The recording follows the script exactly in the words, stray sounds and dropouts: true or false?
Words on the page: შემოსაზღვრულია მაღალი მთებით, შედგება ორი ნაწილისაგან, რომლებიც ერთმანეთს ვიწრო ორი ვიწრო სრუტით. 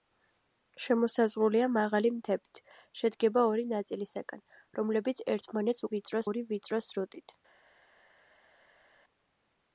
true